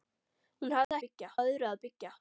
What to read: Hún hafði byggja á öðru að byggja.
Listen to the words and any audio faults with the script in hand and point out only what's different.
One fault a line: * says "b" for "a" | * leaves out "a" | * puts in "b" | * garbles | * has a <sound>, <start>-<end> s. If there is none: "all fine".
* has a dropout, 0.8-0.9 s